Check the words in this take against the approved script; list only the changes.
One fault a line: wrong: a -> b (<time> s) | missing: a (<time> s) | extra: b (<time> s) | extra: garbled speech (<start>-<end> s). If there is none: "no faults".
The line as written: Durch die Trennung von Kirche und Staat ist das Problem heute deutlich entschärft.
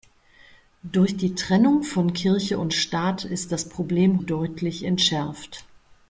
missing: heute (4.2 s)